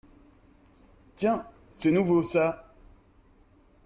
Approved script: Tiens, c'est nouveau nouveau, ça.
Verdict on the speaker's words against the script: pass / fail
fail